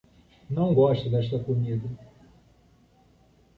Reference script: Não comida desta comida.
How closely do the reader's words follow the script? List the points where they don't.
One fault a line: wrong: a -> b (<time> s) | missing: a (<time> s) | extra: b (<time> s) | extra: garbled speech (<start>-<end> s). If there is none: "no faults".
wrong: comida -> gosto (0.7 s)